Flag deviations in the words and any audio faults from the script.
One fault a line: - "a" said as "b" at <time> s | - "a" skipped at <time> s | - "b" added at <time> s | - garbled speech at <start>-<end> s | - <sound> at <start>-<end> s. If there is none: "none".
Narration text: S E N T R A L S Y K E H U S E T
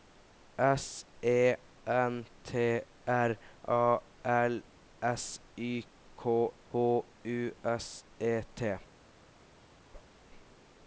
- "E" skipped at 6.5 s
- whoosh at 9.9-10.2 s